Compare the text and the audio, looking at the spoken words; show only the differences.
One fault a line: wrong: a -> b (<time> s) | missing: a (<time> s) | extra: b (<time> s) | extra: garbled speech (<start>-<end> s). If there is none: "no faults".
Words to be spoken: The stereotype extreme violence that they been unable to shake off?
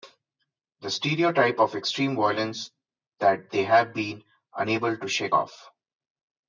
extra: of (1.6 s)
extra: have (3.6 s)